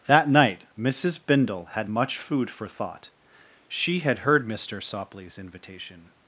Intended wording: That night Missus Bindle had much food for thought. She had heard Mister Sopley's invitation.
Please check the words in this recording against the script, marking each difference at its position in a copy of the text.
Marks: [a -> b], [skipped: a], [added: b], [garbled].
That night Missus Bindle had much food for thought. She had heard Mister Sopley's invitation.